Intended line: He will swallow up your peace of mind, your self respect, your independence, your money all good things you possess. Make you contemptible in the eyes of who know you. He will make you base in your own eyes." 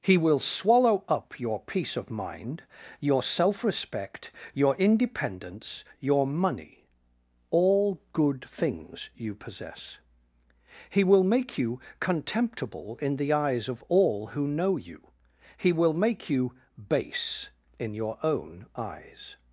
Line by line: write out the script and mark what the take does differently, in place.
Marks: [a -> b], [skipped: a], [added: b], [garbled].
He will swallow up your peace of mind, your self respect, your independence, your money all good things you possess. [added: He will] Make you contemptible in the eyes of [added: all] who know you. He will make you base in your own eyes."